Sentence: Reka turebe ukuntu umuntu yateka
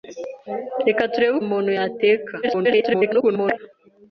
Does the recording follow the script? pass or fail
fail